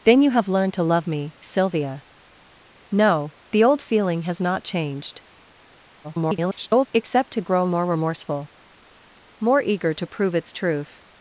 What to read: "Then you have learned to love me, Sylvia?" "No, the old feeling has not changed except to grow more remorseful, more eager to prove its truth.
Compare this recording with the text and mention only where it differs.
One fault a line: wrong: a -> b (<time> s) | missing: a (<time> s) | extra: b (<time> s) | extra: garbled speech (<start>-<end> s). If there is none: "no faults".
extra: garbled speech (6.0-6.9 s)